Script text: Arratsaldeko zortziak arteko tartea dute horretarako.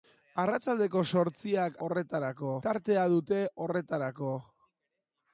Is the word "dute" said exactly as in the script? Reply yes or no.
yes